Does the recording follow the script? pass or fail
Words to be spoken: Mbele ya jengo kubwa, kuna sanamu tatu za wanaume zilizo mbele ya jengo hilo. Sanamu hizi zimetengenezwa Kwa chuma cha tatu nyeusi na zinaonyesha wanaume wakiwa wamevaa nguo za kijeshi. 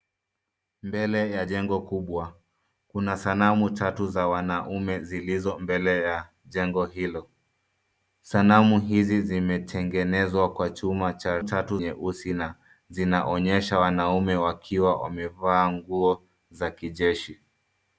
pass